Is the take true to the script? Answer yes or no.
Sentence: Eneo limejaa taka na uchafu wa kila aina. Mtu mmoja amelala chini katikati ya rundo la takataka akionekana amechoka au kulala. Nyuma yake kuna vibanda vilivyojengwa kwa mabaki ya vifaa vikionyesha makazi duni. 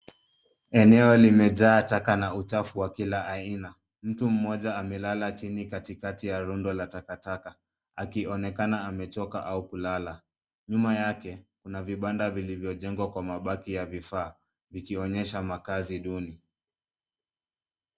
yes